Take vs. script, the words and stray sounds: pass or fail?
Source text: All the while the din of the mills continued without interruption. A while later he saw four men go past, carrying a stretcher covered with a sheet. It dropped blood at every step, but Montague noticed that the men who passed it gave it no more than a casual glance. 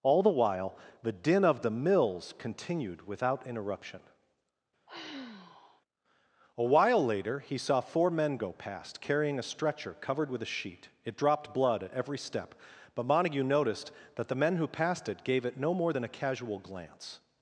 fail